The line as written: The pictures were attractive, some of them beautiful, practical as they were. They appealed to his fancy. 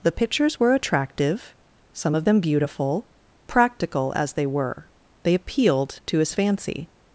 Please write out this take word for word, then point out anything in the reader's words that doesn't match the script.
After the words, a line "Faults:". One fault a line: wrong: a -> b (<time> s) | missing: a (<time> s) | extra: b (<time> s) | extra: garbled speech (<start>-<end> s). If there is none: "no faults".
The pictures were attractive, some of them beautiful, practical as they were. They appealed to his fancy.
Faults:
no faults